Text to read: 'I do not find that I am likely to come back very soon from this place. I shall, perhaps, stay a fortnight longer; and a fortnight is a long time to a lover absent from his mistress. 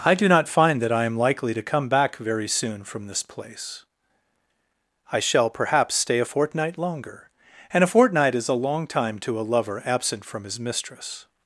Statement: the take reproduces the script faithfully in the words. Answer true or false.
true